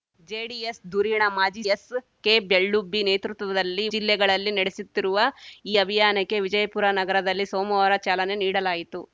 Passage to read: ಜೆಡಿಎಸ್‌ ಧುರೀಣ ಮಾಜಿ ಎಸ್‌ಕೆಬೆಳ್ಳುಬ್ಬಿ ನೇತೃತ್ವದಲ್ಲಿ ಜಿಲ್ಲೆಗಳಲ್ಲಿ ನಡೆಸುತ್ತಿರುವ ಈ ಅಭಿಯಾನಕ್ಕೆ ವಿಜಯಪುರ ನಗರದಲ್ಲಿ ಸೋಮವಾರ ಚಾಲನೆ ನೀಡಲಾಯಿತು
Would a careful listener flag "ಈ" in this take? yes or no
no